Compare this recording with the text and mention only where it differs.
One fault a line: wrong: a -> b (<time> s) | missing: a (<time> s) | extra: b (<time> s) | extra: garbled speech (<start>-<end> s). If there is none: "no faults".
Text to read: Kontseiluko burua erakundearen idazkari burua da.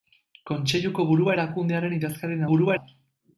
no faults